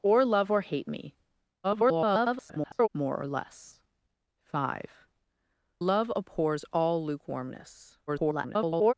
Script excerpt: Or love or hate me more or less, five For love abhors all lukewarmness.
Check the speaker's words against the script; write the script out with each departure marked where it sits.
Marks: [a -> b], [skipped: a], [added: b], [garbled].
Or love or hate me [garbled] more or less, five [skipped: For] love abhors all lukewarmness. [garbled]